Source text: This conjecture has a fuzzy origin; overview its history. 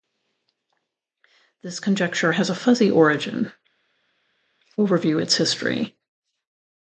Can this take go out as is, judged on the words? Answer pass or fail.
pass